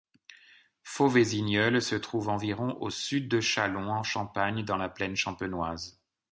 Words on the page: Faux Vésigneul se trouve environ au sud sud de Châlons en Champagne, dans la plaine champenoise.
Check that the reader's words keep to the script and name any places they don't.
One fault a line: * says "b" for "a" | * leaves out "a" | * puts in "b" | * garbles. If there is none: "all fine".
* leaves out "sud"